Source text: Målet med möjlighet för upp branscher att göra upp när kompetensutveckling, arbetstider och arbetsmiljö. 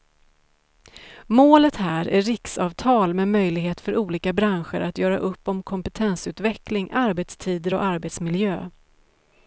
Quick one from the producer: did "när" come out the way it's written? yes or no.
no